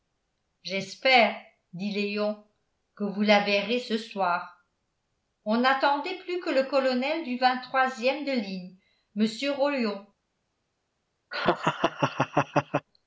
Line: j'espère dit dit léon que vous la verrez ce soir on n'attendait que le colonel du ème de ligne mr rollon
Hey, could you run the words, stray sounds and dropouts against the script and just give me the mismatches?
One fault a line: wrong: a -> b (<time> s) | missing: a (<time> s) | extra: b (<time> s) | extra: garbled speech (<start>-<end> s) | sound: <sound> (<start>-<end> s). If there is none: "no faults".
missing: dit (1.9 s)
extra: plus (6.2 s)
sound: laugh (11.3-12.9 s)